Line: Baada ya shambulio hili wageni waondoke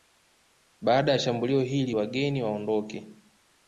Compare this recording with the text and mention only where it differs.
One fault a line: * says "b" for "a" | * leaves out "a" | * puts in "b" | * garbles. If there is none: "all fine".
all fine